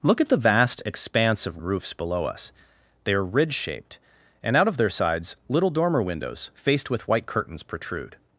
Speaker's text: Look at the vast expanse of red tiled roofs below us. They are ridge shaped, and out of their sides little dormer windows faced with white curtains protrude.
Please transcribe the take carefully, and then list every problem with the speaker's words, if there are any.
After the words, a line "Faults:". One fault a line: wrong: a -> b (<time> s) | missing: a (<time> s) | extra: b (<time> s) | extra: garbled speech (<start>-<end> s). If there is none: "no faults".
Look at the vast expanse of roofs below us. They are ridge shaped, and out of their sides little dormer windows faced with white curtains protrude.
Faults:
missing: red tiled (1.6 s)